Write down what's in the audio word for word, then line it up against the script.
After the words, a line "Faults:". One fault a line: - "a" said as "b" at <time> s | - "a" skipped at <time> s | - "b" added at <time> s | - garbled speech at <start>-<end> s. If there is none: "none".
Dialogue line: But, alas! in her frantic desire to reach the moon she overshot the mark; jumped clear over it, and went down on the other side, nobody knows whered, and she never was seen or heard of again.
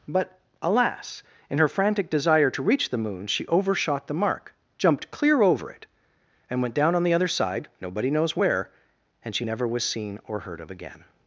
But, alas! in her frantic desire to reach the moon she overshot the mark; jumped clear over it, and went down on the other side, nobody knows where, and she never was seen or heard of again.
Faults:
- "whered" said as "where" at 8.3 s